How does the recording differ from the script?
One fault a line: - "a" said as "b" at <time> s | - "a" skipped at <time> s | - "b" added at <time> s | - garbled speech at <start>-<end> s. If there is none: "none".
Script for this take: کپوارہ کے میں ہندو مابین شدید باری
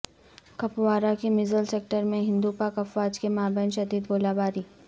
- "مژھل سیکٹر" added at 1.3 s
- "پاک افواج کے" added at 2.6 s
- "گولہ" added at 4.1 s